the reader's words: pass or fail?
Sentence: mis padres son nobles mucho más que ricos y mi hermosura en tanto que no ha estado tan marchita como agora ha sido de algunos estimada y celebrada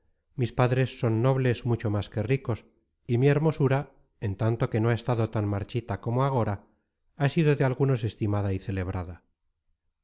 pass